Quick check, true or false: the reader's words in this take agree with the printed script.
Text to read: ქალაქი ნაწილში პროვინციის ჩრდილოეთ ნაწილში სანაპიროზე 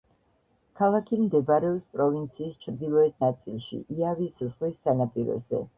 false